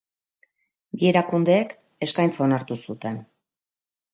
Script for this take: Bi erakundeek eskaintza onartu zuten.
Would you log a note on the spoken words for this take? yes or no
no